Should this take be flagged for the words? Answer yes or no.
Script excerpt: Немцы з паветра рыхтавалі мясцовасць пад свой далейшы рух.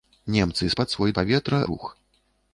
yes